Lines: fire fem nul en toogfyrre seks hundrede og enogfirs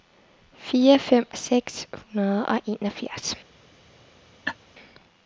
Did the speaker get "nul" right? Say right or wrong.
wrong